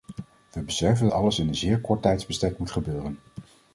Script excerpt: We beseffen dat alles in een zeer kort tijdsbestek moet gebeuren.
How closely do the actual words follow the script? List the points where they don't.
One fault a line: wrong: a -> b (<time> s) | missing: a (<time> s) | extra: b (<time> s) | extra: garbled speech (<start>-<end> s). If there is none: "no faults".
missing: dat (1.1 s)